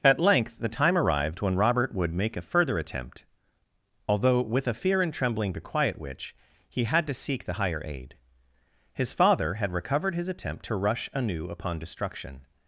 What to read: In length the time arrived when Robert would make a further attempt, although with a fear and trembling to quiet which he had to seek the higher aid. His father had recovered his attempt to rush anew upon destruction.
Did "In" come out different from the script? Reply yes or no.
yes